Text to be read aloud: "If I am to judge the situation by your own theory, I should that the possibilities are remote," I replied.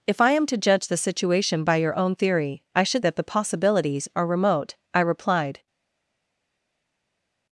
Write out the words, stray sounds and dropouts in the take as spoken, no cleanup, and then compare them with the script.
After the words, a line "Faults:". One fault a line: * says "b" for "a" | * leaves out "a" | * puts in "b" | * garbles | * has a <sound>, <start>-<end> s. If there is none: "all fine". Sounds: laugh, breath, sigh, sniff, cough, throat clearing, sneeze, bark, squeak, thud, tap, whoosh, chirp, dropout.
"If I am to judge the situation by your own theory, I should that the possibilities are remote," I replied.
Faults:
all fine